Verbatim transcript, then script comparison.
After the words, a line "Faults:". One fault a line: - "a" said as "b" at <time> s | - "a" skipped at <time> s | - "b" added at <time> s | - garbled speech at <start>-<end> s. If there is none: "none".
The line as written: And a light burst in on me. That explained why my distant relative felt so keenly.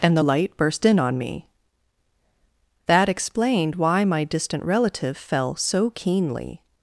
And the light burst in on me. That explained why my distant relative fell so keenly.
Faults:
- "a" said as "the" at 0.2 s
- "felt" said as "fell" at 5.2 s